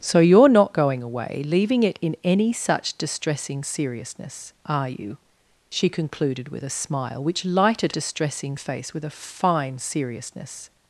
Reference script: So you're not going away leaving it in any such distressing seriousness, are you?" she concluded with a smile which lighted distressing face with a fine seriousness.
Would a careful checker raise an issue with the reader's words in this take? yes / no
no